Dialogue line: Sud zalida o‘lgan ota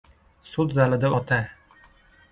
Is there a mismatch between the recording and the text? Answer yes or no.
yes